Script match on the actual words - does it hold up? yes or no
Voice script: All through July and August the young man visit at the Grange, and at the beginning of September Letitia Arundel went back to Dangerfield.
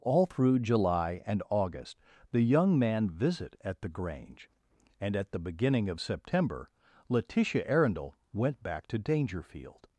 yes